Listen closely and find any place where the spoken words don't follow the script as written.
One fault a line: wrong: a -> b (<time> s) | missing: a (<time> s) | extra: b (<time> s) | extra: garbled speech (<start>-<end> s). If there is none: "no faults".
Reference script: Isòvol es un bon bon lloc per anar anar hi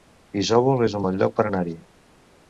missing: bon (1.2 s)
missing: anar (1.6 s)